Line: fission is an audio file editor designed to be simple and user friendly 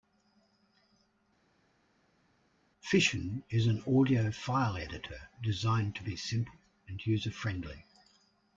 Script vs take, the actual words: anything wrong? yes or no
no